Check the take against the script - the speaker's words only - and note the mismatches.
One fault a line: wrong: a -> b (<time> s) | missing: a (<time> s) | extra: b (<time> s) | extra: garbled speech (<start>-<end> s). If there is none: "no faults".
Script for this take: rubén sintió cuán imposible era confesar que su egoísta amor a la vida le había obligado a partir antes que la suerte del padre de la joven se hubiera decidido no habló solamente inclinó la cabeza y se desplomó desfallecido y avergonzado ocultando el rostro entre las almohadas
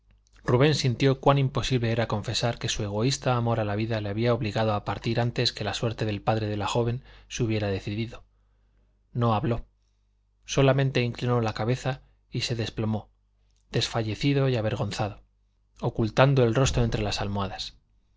no faults